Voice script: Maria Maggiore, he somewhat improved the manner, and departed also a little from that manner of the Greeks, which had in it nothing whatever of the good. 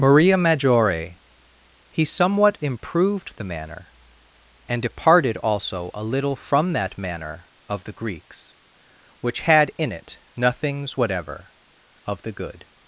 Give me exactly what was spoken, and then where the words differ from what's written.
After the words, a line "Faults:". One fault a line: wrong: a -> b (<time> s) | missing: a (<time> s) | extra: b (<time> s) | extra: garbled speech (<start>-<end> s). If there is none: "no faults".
Maria Maggiore, he somewhat improved the manner, and departed also a little from that manner of the Greeks, which had in it nothings whatever of the good.
Faults:
wrong: nothing -> nothings (10.3 s)